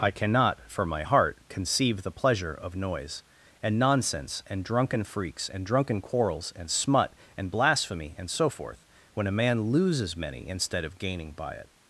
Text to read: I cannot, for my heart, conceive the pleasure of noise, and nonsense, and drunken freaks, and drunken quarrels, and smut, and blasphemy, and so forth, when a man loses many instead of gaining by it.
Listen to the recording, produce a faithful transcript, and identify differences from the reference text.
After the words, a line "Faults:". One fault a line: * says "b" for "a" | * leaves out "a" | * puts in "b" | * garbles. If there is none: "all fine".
I cannot, for my heart, conceive the pleasure of noise, and nonsense, and drunken freaks, and drunken quarrels, and smut, and blasphemy, and so forth, when a man loses many instead of gaining by it.
Faults:
all fine